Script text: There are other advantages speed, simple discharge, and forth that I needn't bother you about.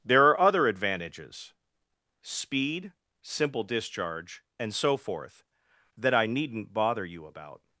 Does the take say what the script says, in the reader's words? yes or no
no